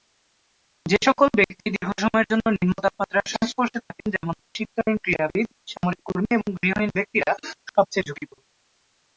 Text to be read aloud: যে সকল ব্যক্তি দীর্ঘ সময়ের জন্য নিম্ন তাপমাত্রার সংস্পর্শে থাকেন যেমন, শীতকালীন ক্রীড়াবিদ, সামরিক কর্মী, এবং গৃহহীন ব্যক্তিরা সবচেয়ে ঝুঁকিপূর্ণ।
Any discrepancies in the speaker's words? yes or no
no